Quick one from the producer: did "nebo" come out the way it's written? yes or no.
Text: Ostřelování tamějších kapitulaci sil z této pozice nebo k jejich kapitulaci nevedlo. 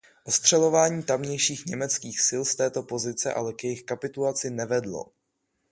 no